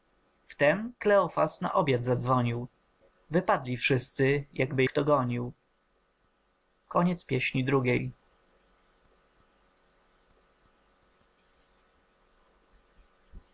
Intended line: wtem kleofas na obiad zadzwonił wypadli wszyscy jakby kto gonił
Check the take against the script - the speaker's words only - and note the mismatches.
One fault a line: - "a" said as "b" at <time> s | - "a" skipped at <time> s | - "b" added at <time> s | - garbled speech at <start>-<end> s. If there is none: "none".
none